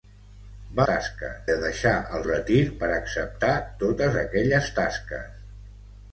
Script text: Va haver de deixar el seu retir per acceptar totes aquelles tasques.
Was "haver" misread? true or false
true